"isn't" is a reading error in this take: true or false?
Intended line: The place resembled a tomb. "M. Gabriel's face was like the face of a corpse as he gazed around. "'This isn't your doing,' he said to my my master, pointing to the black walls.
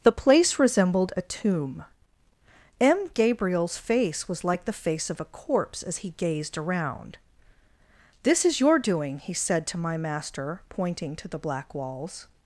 true